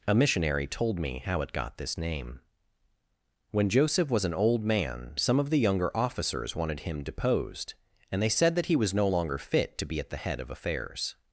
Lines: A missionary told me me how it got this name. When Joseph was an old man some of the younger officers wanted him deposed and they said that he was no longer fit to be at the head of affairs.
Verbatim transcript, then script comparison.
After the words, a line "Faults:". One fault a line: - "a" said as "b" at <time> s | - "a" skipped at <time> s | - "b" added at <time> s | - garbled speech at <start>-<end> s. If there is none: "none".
A missionary told me how it got this name. When Joseph was an old man some of the younger officers wanted him deposed and they said that he was no longer fit to be at the head of affairs.
Faults:
- "me" skipped at 1.2 s